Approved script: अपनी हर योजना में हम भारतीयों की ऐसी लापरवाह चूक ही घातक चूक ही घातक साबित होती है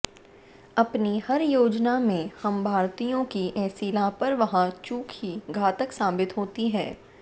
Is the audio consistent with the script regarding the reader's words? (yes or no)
no